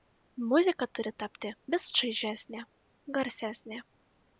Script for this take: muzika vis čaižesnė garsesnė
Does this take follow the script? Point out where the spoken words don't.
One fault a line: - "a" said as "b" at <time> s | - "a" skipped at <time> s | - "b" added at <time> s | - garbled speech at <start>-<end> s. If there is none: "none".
- "turi tapti" added at 1.0 s